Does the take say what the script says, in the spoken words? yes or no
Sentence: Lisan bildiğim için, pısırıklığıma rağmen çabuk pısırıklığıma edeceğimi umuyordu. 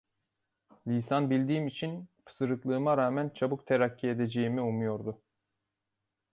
no